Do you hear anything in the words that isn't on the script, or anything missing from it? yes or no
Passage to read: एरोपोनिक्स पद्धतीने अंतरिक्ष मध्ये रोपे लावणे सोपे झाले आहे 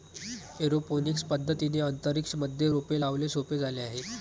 no